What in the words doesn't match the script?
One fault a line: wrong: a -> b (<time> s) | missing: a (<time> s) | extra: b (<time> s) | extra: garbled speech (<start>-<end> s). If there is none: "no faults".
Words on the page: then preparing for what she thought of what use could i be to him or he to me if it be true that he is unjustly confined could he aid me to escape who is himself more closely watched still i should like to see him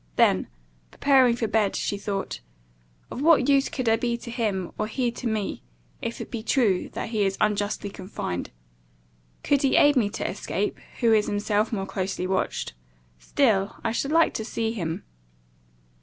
wrong: what -> bed (1.5 s)